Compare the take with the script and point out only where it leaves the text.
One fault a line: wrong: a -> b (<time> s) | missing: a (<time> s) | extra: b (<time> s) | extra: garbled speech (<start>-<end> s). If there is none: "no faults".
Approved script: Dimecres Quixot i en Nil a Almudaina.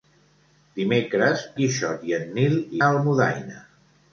no faults